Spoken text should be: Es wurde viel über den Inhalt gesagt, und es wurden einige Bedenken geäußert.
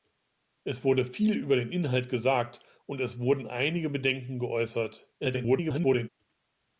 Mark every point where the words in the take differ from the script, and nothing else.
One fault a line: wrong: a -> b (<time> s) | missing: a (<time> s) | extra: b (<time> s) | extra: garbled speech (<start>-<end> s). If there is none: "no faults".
extra: garbled speech (5.2-6.1 s)